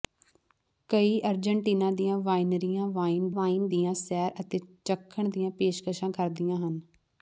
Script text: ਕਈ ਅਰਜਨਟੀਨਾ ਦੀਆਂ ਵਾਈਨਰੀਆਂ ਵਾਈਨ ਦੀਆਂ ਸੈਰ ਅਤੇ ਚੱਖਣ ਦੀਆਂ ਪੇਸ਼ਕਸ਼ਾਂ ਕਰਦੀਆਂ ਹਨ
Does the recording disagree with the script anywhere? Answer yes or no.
yes